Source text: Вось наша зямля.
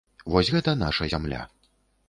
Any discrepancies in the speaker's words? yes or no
yes